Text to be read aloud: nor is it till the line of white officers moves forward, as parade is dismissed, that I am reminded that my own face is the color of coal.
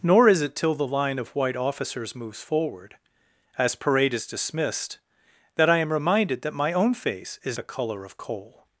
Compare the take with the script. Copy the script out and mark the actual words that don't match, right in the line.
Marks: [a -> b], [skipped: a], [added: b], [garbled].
nor is it till the line of white officers moves forward, as parade is dismissed, that I am reminded that my own face is the color of coal.